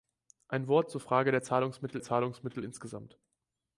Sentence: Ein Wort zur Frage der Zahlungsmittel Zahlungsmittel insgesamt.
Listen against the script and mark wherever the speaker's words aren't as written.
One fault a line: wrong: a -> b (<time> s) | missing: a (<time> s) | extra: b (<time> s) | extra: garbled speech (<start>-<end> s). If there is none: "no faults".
no faults